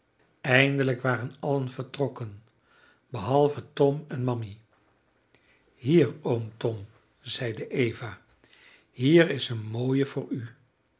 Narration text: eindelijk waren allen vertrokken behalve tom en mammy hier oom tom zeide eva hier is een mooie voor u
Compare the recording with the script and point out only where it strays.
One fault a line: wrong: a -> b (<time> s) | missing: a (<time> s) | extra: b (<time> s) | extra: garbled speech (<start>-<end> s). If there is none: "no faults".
no faults